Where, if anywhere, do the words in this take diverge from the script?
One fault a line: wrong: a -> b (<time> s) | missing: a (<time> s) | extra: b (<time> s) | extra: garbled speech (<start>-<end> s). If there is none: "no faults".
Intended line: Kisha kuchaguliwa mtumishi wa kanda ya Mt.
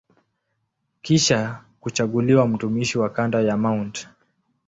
no faults